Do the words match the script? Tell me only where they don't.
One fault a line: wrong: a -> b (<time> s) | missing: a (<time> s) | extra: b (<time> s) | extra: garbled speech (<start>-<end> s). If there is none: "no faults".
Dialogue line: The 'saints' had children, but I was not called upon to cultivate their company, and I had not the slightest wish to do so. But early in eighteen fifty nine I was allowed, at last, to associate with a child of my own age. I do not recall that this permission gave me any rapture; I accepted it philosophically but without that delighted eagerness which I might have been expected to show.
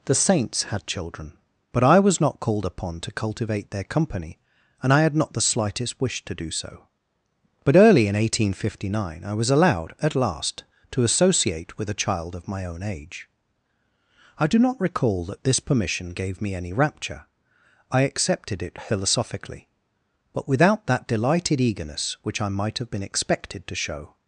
no faults